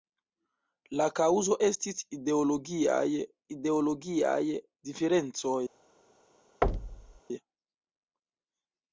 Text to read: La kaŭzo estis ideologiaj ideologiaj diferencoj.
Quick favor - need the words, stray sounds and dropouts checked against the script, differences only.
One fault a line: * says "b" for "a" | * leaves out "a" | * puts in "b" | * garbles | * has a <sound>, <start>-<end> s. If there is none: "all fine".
* has a thud, 6.6-7.2 s